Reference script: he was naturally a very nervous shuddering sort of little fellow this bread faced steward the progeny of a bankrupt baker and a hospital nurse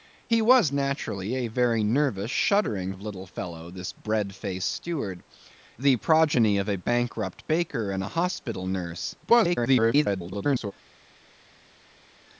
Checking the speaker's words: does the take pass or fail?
fail